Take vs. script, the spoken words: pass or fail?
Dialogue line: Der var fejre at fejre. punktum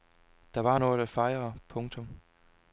fail